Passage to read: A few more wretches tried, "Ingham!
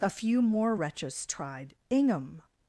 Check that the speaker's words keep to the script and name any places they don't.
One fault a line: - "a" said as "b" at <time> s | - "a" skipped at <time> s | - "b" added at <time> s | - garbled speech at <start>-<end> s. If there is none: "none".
none